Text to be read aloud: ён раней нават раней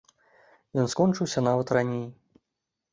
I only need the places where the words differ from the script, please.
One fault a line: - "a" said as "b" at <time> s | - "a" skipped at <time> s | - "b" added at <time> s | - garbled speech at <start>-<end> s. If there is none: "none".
- "раней" said as "скончыўся" at 0.9 s